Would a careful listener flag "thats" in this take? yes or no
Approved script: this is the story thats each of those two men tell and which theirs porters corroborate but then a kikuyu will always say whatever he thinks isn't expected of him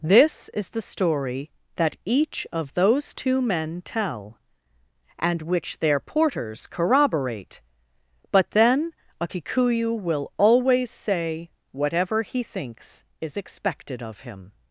yes